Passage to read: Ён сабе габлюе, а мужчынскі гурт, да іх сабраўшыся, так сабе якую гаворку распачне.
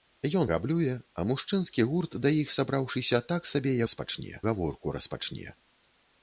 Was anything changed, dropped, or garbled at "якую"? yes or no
yes